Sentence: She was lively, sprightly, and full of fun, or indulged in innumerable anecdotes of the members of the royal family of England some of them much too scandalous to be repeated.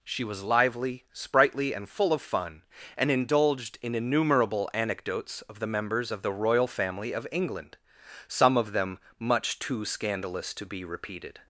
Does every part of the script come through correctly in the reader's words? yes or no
no